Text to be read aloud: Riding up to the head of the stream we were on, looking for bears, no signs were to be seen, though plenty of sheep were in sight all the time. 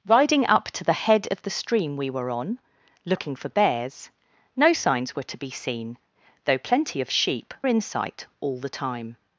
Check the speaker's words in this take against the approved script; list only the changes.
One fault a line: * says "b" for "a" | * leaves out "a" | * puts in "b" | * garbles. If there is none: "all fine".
* leaves out "were"